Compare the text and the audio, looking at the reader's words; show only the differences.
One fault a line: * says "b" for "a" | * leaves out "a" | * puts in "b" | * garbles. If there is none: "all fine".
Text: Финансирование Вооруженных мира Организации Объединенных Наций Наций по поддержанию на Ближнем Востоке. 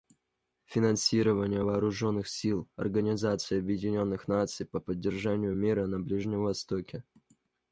* says "сил" for "мира"
* leaves out "Наций"
* puts in "мира"